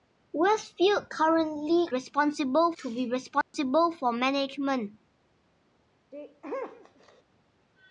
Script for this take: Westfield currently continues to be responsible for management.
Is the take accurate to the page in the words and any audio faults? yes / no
no